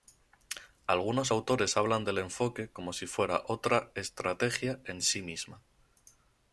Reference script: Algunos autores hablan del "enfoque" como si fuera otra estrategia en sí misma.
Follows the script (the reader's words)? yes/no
yes